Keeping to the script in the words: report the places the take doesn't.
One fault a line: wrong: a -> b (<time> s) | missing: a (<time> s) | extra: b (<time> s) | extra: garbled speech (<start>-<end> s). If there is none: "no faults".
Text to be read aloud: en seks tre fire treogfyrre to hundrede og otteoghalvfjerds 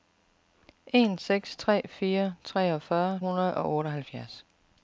missing: to (3.2 s)